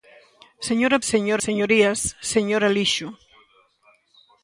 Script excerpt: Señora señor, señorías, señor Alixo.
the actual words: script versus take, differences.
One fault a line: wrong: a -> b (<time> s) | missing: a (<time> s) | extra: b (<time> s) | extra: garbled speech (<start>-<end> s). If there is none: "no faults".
no faults